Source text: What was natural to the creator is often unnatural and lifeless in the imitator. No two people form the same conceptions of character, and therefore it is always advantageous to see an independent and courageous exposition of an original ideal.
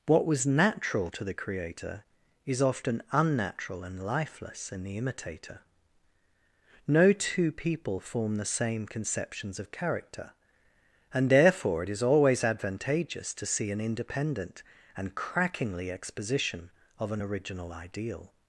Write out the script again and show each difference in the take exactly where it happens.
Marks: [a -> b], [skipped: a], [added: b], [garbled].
What was natural to the creator is often unnatural and lifeless in the imitator. No two people form the same conceptions of character, and therefore it is always advantageous to see an independent and [courageous -> crackingly] exposition of an original ideal.